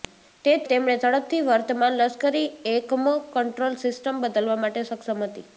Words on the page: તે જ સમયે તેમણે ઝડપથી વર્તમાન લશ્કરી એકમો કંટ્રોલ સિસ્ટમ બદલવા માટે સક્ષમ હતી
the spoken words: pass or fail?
fail